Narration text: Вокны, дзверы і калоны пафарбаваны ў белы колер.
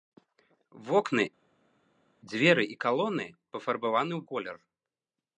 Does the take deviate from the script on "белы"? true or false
true